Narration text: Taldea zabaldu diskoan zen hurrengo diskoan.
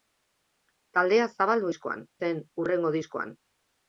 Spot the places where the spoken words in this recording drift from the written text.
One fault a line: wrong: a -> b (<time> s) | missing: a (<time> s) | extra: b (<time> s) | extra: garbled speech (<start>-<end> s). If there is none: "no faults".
no faults